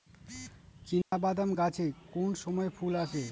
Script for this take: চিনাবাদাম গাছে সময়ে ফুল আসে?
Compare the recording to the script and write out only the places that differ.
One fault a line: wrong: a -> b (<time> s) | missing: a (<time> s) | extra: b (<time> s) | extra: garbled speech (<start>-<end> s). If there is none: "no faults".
extra: কোন (2.1 s)